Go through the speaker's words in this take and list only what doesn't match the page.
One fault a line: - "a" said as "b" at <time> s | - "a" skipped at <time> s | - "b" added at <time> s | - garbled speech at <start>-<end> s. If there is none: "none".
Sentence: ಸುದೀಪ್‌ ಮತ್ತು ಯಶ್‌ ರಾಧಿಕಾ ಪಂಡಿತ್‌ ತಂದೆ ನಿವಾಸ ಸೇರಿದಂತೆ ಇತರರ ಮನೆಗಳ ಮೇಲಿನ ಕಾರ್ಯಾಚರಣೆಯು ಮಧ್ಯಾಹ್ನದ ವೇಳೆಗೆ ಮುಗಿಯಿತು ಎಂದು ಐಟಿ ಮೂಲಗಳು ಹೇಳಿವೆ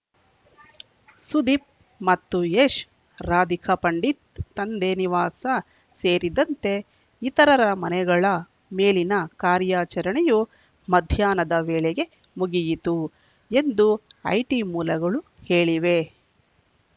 none